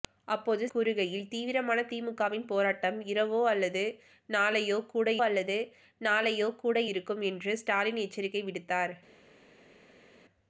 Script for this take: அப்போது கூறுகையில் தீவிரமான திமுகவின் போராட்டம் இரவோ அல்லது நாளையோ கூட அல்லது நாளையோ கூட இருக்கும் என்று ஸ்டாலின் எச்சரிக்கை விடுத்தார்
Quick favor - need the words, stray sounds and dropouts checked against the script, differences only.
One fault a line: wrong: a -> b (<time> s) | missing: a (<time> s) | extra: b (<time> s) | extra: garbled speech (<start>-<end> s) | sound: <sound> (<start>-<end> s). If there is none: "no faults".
no faults